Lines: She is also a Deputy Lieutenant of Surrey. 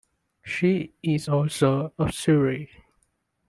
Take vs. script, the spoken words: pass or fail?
fail